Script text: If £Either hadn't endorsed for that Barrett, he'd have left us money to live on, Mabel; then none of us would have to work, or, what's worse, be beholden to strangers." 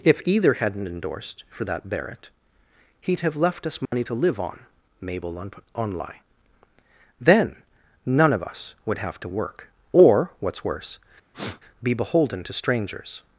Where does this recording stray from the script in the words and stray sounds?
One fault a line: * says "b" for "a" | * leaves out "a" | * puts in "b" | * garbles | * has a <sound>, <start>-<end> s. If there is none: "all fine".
* has a dropout, 3.9-3.9 s
* puts in "on on lie"
* has a sniff, 11.3-11.6 s